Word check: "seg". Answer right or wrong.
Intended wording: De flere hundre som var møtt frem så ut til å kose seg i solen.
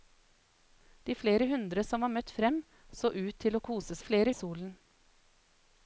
wrong